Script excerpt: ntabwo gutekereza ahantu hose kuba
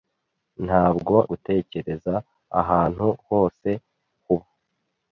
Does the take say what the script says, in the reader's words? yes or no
yes